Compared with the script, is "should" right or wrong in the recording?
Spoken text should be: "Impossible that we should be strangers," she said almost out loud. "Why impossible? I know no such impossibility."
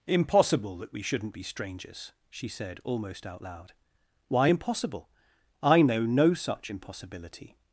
wrong